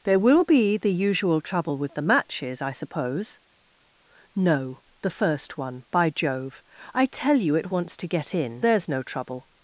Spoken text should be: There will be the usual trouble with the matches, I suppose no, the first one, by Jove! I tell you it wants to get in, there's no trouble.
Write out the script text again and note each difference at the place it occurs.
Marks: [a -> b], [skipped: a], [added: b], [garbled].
There will be the usual trouble with the matches, I suppose no, the first one, by Jove! I tell you it wants to get in, there's no trouble.